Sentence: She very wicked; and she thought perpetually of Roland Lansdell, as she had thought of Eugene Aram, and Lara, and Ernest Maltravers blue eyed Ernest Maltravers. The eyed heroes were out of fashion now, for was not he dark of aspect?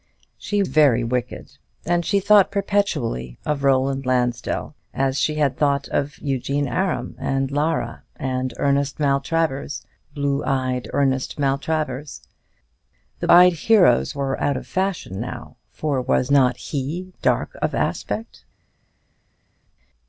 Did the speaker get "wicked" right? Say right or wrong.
right